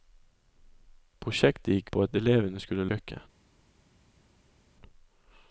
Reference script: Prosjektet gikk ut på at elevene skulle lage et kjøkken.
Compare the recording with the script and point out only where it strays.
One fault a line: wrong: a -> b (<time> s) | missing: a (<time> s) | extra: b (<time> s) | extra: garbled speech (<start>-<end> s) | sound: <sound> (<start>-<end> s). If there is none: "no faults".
missing: ut (1.9 s)
missing: lage et (2.9 s)